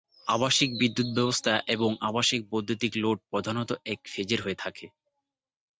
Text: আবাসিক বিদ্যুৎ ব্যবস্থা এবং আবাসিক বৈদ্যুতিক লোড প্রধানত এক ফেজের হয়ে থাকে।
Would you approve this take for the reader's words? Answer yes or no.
yes